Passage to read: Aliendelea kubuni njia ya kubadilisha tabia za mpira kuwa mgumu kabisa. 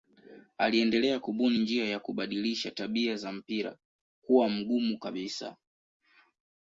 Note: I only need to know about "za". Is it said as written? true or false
true